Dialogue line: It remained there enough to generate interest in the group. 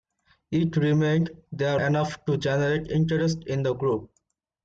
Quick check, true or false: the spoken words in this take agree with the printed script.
true